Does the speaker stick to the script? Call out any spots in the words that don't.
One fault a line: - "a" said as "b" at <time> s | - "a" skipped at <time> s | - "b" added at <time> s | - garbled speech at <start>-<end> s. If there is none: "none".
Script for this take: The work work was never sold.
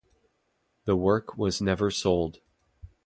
- "work" skipped at 1.4 s